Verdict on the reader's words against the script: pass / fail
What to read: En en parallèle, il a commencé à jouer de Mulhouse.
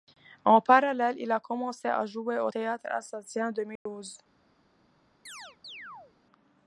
fail